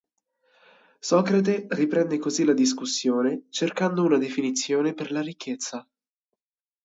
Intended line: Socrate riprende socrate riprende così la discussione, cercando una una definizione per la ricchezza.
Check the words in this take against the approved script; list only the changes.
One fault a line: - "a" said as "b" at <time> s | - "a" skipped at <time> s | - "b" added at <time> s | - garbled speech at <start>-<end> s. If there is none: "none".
- "socrate riprende" skipped at 2.2 s
- "una" skipped at 4.2 s